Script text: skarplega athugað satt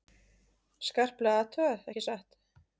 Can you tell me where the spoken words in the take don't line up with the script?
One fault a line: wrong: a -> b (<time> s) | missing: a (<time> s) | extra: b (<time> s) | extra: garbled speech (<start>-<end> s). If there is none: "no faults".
extra: ekki (1.9 s)